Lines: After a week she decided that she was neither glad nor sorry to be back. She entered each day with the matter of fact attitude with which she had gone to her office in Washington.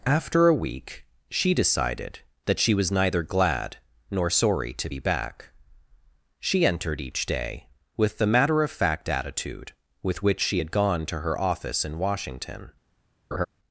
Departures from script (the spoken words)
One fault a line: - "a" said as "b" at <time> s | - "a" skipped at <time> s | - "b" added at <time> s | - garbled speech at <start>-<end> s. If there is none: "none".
none